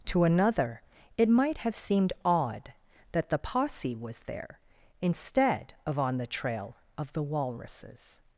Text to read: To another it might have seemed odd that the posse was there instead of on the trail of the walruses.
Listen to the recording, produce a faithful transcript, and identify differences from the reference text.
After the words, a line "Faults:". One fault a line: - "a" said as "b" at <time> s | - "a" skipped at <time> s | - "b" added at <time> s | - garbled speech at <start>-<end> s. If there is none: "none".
To another it might have seemed odd that the posse was there instead of on the trail of the walruses.
Faults:
none